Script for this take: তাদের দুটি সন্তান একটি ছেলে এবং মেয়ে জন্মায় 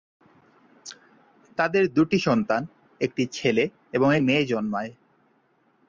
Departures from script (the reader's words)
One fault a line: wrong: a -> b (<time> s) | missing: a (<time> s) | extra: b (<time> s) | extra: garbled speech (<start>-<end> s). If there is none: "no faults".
no faults